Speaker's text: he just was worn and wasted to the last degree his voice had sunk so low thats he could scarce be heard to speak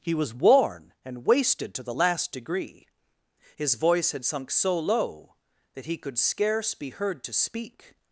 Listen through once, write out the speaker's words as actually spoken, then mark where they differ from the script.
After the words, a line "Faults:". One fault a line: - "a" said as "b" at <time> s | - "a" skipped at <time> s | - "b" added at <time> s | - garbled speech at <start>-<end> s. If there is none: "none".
he was worn and wasted to the last degree his voice had sunk so low that he could scarce be heard to speak
Faults:
- "just" skipped at 0.1 s
- "thats" said as "that" at 5.7 s